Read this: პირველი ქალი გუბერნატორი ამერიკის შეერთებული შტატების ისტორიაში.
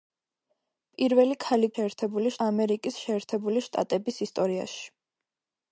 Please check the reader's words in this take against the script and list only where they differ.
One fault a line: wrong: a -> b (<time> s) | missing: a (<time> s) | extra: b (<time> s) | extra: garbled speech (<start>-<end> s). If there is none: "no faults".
wrong: გუბერნატორი -> შეერთებული (1.7 s)